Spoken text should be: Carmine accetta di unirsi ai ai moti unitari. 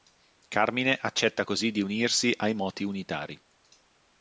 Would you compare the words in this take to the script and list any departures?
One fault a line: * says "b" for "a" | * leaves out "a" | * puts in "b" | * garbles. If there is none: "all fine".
* puts in "così"
* leaves out "ai"